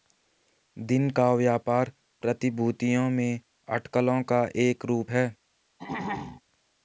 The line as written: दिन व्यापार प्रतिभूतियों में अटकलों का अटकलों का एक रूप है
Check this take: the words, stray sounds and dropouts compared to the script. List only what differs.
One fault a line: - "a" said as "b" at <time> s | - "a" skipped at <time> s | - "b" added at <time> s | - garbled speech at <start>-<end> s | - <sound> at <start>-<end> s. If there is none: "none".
- "का" added at 1.1 s
- "अटकलों का" skipped at 4.5 s
- throat clearing at 5.8-6.4 s